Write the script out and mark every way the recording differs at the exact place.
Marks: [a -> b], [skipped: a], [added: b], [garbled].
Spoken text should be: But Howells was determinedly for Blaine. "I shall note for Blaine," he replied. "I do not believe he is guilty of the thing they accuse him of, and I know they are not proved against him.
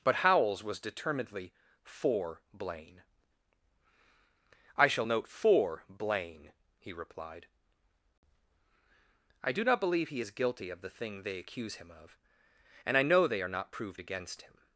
But Howells was determinedly for Blaine. "I shall note for Blaine," he replied. "I do not believe he is guilty of the thing they accuse him of, and I know they are not proved against him.